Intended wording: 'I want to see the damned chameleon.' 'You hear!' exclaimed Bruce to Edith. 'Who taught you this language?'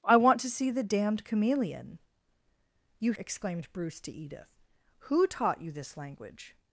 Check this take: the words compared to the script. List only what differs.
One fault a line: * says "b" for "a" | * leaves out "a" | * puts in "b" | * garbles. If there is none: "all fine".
* leaves out "hear"